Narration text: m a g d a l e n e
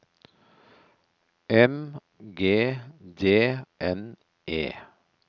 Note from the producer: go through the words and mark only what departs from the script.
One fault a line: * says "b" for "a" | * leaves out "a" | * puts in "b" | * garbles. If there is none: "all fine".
* leaves out "a"
* leaves out "a l e"